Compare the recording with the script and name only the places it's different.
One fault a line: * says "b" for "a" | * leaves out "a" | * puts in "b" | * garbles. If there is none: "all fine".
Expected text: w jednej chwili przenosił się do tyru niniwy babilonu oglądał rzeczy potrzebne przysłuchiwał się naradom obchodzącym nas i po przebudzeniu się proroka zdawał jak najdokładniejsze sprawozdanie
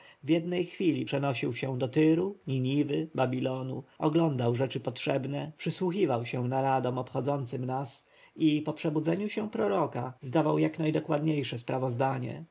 all fine